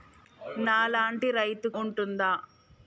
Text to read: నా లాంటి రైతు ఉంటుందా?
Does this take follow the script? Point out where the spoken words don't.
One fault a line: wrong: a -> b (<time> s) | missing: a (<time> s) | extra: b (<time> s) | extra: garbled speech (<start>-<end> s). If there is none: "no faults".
no faults